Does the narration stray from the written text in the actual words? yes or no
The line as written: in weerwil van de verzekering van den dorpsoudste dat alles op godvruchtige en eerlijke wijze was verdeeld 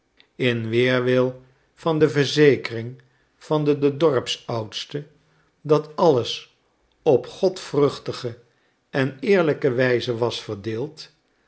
yes